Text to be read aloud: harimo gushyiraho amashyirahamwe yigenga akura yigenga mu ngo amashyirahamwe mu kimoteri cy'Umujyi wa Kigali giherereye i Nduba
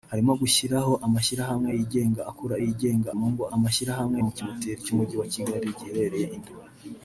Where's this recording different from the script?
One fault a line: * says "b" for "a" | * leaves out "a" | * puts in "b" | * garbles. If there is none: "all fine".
all fine